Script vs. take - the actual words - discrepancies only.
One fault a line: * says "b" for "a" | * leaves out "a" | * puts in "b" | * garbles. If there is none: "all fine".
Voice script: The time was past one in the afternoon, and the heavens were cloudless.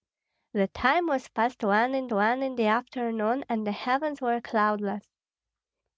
* puts in "one in"